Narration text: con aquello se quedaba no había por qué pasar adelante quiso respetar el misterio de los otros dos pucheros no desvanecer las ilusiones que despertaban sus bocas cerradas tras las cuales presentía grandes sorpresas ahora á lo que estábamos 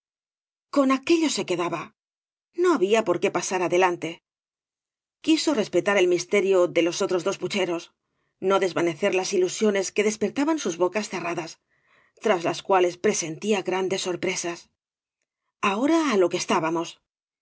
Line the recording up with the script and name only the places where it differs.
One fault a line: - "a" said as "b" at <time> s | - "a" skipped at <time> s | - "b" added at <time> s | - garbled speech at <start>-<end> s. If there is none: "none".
none